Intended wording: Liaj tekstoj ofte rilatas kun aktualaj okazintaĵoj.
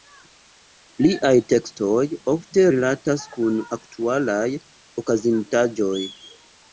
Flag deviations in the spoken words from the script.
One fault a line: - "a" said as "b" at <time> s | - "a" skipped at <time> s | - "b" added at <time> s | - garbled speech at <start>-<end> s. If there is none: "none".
none